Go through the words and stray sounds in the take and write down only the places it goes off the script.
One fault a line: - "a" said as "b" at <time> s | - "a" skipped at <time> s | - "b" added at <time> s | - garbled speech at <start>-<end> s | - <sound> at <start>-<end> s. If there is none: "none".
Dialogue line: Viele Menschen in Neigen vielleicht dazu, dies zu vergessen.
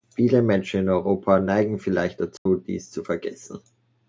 - "Europa" added at 0.9 s
- dropout at 2.4-2.5 s